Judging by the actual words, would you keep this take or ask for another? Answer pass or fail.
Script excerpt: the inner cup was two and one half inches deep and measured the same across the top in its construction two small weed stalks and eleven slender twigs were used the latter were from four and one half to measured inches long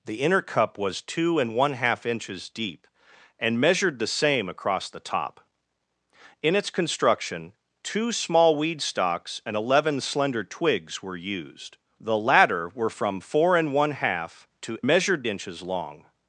pass